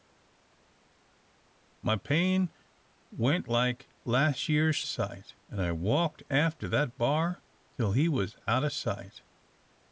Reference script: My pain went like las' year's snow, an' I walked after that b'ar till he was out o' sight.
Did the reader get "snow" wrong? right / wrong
wrong